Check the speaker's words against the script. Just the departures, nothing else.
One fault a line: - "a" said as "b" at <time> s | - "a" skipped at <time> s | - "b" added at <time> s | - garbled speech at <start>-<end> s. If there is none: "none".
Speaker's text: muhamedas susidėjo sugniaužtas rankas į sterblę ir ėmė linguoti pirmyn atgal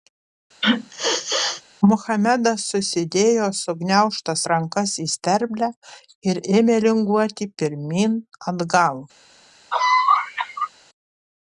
none